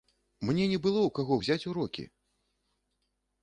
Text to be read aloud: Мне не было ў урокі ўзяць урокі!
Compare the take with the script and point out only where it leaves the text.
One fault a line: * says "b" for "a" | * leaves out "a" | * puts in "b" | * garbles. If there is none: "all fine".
* says "каго" for "урокі"